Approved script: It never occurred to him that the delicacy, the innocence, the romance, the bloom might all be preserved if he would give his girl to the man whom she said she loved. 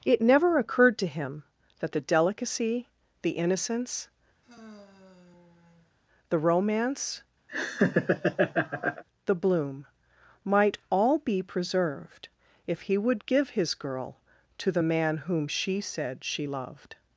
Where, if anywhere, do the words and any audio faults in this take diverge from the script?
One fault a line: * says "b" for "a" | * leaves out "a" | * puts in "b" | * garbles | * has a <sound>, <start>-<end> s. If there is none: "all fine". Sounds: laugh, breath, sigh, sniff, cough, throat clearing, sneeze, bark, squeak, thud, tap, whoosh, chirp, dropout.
* has a sigh, 4.4-6.0 s
* has a laugh, 7.5-9.0 s